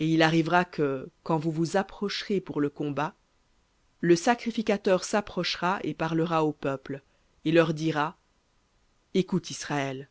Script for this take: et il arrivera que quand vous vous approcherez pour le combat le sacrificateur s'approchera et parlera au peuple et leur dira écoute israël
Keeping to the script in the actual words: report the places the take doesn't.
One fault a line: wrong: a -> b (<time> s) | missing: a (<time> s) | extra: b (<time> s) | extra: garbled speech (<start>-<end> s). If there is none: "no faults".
no faults